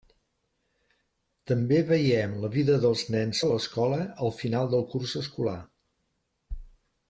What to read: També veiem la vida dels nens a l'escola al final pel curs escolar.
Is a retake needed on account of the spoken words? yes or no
yes